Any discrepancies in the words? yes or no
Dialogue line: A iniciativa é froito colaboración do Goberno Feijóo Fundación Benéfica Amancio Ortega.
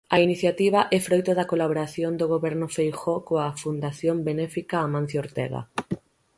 yes